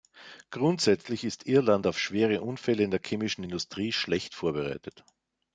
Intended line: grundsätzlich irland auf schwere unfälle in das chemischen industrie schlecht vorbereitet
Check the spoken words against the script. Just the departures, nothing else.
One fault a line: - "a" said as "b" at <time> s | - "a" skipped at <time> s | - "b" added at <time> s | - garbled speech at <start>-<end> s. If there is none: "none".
- "ist" added at 1.2 s
- "das" said as "der" at 2.9 s